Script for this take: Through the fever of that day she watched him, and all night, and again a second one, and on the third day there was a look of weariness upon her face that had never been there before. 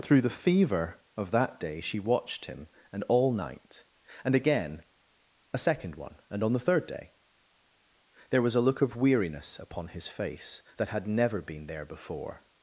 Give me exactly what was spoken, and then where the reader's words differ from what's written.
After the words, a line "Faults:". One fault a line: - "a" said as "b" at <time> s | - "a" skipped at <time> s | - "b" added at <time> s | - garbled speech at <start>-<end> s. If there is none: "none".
Through the fever of that day she watched him, and all night, and again a second one, and on the third day there was a look of weariness upon his face that had never been there before.
Faults:
- "her" said as "his" at 9.9 s